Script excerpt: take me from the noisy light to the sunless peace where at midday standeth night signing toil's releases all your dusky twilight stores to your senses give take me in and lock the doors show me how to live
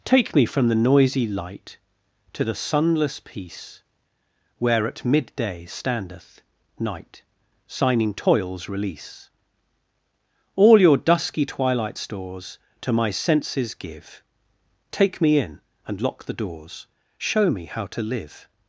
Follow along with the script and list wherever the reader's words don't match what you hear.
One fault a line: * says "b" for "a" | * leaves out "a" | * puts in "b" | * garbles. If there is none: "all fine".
* says "release" for "releases"
* says "my" for "your"